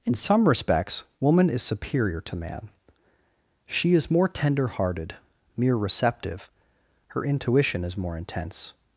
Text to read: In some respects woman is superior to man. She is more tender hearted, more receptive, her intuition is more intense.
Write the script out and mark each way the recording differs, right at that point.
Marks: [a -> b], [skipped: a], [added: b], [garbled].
In some respects woman is superior to man. She is more tender hearted, [more -> mere] receptive, her intuition is more intense.